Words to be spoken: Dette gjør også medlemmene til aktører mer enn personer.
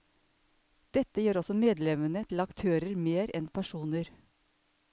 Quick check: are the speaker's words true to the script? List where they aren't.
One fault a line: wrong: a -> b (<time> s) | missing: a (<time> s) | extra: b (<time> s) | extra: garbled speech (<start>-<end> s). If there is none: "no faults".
no faults